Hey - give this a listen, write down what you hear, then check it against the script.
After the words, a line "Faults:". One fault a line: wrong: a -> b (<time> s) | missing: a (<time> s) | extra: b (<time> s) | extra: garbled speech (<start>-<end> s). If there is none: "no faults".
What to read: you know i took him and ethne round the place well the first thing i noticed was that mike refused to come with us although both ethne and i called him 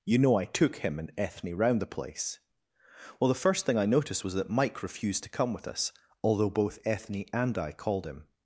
you know i took him and ethne round the place well the first thing i noticed was that mike refused to come with us although both ethne and i called him
Faults:
no faults